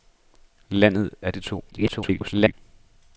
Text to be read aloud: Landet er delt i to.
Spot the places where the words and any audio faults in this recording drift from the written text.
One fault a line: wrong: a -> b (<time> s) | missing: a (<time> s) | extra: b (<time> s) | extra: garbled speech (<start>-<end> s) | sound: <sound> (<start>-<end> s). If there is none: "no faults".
missing: delt (1.3 s)
extra: garbled speech (1.7-2.5 s)